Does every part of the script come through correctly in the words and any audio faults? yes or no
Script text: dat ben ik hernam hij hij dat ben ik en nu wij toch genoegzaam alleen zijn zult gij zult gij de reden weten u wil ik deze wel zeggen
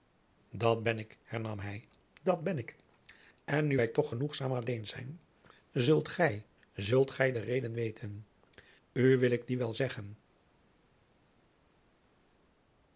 no